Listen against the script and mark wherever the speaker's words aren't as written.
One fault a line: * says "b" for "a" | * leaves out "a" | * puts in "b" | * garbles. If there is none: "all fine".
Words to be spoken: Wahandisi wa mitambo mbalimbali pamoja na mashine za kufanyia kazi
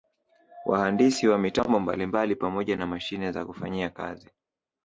all fine